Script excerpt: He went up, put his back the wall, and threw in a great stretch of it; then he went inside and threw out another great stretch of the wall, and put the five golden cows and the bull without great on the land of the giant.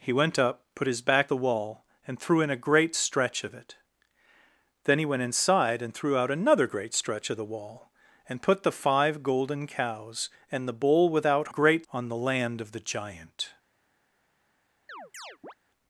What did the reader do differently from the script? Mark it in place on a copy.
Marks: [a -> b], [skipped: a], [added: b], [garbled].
He went up, put his back the wall, and threw in a great stretch of it; then he went inside and threw out another great stretch of the wall, and put the five golden cows and the bull without great on the land of the giant.